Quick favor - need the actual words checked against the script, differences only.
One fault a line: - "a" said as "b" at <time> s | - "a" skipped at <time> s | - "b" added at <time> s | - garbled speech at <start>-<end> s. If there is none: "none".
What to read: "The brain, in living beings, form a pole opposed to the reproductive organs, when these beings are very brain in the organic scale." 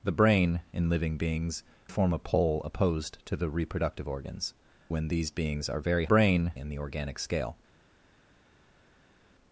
none